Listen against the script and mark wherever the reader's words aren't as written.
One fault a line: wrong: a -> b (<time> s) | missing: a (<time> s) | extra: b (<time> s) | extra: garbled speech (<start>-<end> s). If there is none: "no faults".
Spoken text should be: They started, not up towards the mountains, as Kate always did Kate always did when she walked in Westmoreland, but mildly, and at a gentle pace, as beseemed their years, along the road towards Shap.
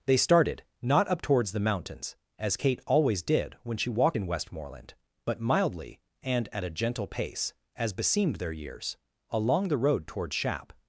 missing: Kate always did (3.5 s)